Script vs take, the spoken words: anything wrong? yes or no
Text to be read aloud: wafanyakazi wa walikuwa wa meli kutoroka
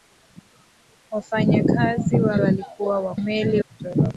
no